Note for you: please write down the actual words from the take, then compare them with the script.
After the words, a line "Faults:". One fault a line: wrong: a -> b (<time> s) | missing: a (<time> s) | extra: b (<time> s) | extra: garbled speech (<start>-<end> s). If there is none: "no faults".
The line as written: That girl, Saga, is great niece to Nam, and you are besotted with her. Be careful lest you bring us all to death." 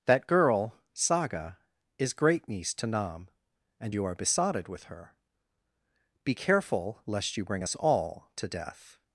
That girl, Saga, is great niece to Nam, and you are besotted with her. Be careful lest you bring us all to death."
Faults:
no faults